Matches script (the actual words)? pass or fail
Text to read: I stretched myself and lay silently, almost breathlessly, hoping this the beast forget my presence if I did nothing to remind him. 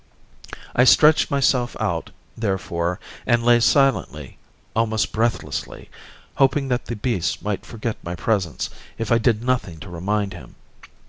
fail